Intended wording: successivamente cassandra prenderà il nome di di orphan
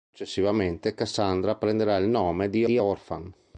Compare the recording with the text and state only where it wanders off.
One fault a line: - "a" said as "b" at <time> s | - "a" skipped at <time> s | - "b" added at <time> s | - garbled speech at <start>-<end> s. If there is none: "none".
none